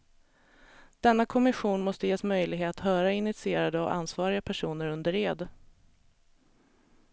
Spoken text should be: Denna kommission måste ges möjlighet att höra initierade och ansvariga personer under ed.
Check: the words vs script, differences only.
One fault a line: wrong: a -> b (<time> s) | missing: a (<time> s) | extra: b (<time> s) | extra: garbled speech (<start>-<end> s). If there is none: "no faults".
missing: att (2.8 s)